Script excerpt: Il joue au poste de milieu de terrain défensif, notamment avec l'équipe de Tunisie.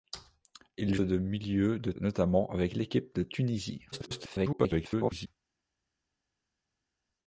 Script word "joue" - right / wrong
wrong